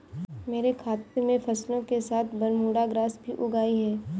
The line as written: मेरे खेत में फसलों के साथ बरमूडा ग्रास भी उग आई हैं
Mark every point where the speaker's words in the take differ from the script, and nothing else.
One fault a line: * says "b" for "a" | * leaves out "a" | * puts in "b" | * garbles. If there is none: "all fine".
* leaves out "खेत"